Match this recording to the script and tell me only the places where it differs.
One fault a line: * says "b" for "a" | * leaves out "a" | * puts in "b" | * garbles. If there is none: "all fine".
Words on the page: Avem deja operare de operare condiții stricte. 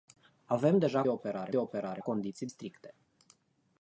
all fine